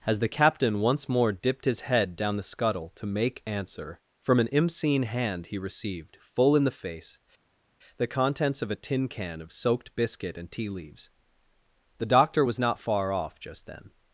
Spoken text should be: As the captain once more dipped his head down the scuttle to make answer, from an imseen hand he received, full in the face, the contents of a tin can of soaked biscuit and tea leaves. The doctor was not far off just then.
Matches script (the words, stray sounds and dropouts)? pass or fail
pass